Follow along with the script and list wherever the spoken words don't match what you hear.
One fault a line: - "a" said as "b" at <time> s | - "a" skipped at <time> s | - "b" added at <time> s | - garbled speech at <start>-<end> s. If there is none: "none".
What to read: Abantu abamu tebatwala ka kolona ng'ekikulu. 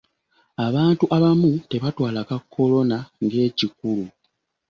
none